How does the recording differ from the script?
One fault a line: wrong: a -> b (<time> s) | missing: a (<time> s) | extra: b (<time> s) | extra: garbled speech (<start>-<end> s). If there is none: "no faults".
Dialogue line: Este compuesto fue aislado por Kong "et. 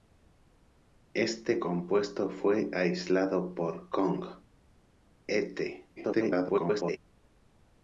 extra: garbled speech (6.0-7.0 s)